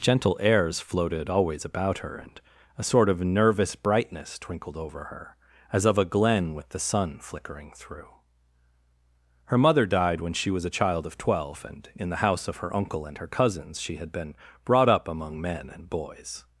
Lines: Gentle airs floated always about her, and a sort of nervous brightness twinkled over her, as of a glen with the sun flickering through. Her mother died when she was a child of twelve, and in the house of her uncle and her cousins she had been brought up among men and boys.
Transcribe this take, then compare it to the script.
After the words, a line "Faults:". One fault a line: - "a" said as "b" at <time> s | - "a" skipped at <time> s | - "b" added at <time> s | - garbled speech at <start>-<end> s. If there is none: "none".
Gentle airs floated always about her, and a sort of nervous brightness twinkled over her, as of a glen with the sun flickering through. Her mother died when she was a child of twelve, and in the house of her uncle and her cousins she had been brought up among men and boys.
Faults:
none